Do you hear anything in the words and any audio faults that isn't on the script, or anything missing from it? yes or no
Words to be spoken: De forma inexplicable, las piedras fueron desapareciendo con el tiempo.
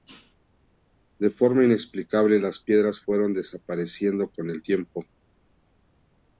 no